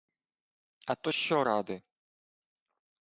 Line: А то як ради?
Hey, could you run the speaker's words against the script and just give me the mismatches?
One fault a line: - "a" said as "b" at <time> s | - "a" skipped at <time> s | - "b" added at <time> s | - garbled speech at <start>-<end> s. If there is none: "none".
- "як" said as "що" at 1.1 s